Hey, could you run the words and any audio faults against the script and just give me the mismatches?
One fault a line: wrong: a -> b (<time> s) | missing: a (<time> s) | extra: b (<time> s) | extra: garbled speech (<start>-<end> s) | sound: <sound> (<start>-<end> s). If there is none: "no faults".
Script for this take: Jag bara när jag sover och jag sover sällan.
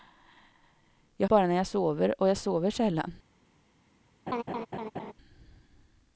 sound: laugh (4.3-5.1 s)